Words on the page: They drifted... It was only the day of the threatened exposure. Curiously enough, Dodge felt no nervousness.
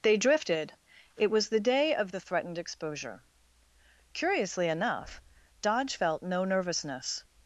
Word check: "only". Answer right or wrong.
wrong